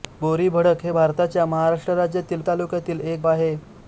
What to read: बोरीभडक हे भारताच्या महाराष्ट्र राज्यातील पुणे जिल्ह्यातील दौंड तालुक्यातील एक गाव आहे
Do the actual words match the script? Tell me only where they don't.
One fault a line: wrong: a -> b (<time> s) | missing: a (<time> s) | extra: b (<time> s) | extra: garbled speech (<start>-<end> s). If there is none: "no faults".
missing: पुणे जिल्ह्यातील दौंड (2.4 s)
missing: गाव (3.2 s)